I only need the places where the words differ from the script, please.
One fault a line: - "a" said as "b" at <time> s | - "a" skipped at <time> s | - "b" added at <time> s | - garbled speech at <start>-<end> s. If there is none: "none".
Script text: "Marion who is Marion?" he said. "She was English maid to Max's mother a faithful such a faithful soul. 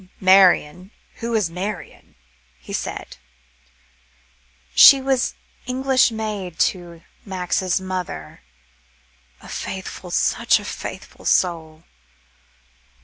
none